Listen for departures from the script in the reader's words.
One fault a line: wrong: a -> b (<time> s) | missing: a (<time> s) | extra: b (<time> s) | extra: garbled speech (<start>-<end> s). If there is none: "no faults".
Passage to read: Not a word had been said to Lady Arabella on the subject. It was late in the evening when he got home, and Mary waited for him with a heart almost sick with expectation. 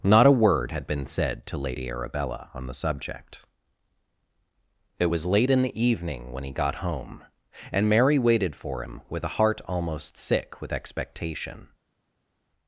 no faults